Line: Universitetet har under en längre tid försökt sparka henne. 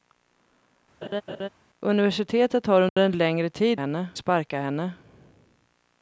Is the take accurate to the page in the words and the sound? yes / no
no